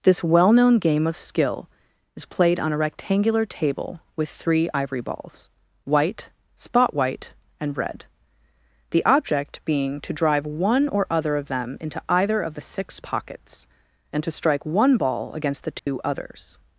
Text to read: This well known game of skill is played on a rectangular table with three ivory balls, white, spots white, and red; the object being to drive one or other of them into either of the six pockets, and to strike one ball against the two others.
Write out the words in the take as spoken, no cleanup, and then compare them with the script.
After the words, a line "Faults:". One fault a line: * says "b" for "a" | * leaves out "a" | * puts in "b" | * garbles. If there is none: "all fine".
This well known game of skill is played on a rectangular table with three ivory balls, white, spot white, and red; the object being to drive one or other of them into either of the six pockets, and to strike one ball against the two others.
Faults:
* says "spot" for "spots"